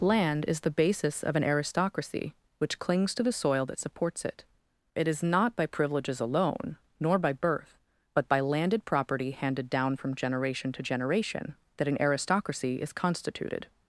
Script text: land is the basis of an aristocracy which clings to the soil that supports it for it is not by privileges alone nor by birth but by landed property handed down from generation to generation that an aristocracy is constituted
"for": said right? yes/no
no